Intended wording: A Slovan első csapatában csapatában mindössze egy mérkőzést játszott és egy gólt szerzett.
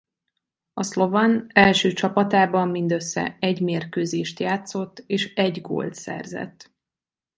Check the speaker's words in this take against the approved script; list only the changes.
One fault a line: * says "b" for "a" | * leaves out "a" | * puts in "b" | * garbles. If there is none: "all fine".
* leaves out "csapatában"